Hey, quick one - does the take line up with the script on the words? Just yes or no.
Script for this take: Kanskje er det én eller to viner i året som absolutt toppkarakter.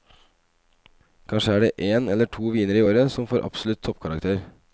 no